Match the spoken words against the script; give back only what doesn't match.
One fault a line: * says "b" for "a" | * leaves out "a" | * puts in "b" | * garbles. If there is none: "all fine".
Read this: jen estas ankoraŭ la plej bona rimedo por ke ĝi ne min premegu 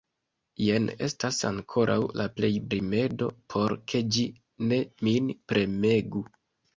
* leaves out "bona"